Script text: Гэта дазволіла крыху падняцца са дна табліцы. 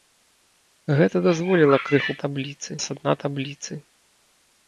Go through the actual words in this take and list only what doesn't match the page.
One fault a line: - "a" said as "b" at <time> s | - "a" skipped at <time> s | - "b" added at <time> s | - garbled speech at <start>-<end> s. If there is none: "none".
- "падняцца" said as "табліцы" at 2.2 s